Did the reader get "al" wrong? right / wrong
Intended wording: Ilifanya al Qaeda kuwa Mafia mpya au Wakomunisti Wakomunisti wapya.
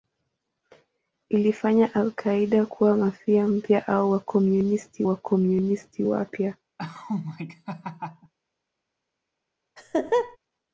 right